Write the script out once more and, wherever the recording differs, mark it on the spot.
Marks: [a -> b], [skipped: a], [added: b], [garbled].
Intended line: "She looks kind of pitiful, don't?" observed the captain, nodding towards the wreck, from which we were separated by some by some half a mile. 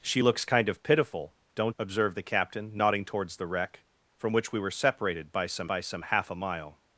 "She looks kind of pitiful, don't?" observed the captain, nodding towards the wreck, from which we were separated by some by some half a mile.